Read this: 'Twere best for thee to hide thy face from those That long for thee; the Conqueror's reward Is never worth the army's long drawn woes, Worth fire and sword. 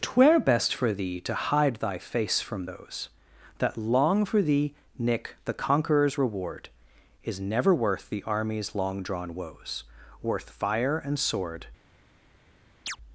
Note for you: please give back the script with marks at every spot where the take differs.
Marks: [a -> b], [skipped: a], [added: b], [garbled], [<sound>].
'Twere best for thee to hide thy face from those That long for thee; [added: nick] the Conqueror's reward Is never worth the army's long drawn woes, Worth fire and sword. [chirp]